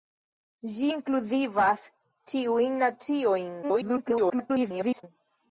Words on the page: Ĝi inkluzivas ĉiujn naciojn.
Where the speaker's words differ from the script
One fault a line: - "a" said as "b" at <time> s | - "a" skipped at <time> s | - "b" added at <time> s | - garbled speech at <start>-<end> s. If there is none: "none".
- garbled speech at 3.6-5.0 s